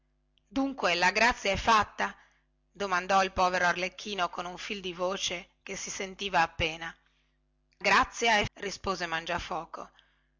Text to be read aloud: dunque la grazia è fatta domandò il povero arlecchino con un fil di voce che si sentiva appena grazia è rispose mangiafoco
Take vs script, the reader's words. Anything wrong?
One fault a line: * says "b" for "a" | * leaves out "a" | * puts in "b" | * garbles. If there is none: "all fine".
all fine